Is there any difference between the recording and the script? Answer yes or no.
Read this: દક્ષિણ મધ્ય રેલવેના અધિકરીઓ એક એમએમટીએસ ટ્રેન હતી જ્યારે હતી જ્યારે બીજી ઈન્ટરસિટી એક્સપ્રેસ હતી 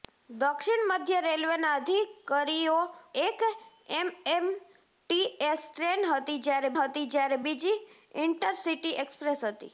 no